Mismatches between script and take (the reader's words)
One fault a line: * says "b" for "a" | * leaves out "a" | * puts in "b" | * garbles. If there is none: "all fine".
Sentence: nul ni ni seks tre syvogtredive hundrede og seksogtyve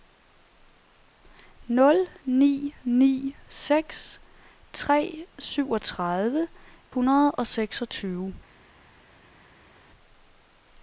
all fine